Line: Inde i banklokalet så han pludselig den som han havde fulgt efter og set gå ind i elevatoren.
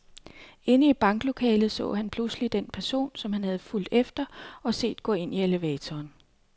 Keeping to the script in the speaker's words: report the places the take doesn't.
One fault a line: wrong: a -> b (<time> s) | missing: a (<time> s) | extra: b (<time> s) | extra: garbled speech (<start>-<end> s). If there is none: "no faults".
extra: person (2.7 s)